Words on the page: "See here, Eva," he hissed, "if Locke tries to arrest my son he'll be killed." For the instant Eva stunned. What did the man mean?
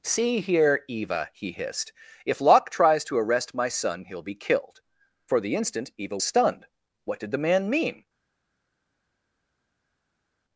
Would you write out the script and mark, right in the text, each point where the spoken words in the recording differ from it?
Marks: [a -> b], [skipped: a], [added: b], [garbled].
"See here, Eva," he hissed, "if Locke tries to arrest my son he'll be killed." For the instant Eva stunned. What did the man mean?